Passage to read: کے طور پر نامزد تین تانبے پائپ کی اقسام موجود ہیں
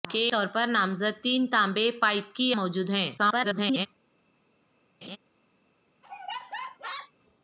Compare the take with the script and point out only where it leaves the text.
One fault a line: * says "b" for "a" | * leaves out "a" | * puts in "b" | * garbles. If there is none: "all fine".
* leaves out "اقسام"
* garbles